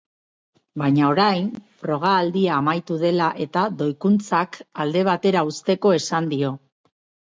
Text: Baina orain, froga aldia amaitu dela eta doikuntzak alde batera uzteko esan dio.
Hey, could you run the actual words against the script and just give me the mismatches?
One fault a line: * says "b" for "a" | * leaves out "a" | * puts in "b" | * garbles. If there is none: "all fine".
all fine